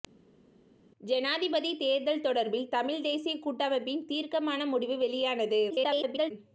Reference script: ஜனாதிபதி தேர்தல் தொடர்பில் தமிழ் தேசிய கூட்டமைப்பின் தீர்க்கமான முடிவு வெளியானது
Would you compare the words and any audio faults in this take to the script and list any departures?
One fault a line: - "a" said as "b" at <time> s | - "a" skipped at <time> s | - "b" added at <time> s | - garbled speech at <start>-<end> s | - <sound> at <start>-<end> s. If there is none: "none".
- garbled speech at 5.7-6.3 s